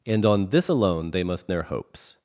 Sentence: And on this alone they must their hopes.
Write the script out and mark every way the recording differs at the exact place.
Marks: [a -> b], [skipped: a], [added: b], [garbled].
And on this alone they must their hopes.